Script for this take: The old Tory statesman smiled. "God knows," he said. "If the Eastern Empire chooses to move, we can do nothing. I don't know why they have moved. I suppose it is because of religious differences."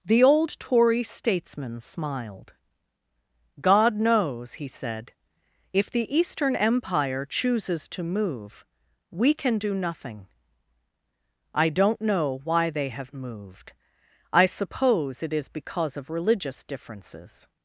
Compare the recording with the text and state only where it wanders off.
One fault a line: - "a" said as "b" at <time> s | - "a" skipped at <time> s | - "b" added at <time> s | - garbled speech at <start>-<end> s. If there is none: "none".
none